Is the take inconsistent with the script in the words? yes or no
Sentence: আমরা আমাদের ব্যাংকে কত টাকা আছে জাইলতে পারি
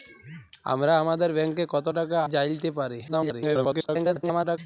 yes